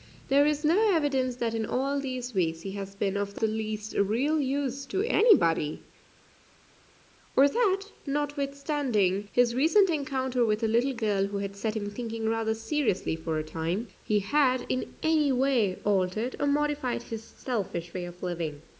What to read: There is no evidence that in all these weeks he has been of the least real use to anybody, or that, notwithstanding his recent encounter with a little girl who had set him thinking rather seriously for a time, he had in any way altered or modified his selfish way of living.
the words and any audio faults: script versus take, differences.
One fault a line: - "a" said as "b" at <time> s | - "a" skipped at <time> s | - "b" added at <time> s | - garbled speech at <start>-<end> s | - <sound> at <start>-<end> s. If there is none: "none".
none